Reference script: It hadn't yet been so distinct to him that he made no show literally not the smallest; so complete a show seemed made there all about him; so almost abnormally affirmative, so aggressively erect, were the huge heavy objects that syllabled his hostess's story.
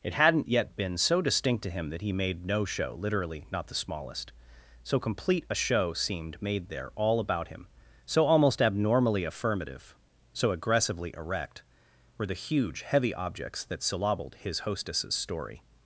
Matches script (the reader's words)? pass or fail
pass